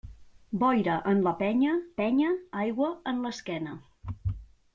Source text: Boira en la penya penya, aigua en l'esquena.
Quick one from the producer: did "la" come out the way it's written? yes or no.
yes